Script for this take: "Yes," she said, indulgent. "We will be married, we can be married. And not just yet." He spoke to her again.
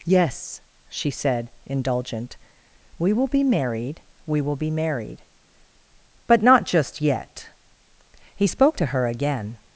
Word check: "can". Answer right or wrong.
wrong